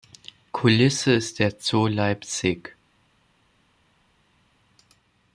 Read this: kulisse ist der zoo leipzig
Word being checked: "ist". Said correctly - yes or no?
yes